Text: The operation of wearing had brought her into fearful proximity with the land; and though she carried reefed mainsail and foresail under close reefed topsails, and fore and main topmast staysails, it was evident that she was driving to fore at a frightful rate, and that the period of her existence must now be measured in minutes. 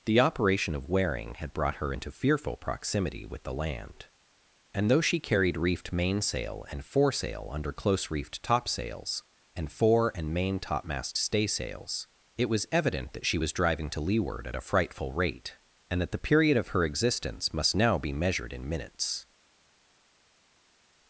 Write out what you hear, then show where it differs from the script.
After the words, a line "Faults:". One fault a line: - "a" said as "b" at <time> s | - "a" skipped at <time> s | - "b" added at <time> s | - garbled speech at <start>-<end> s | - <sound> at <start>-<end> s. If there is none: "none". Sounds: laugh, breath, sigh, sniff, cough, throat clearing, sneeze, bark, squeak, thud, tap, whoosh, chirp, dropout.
The operation of wearing had brought her into fearful proximity with the land; and though she carried reefed mainsail and foresail under close reefed topsails, and fore and main topmast staysails, it was evident that she was driving to leeward at a frightful rate, and that the period of her existence must now be measured in minutes.
Faults:
- "fore" said as "leeward" at 14.0 s